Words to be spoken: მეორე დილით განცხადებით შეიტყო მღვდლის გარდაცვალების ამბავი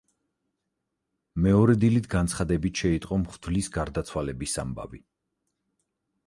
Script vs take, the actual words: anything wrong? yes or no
no